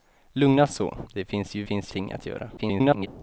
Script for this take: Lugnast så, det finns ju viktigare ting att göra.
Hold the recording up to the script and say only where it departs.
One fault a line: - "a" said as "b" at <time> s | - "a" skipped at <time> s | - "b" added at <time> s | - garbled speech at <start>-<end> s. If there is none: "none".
- "viktigare" said as "finns" at 1.6 s
- garbled speech at 2.6-3.1 s